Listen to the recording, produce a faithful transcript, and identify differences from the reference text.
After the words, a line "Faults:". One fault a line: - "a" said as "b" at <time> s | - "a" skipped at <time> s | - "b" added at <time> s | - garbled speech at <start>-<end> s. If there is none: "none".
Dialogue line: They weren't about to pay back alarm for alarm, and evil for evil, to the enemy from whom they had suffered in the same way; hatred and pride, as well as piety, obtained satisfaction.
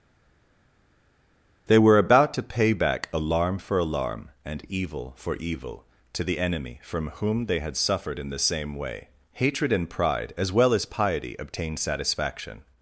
They were about to pay back alarm for alarm, and evil for evil, to the enemy from whom they had suffered in the same way; hatred and pride, as well as piety, obtained satisfaction.
Faults:
- "weren't" said as "were" at 1.8 s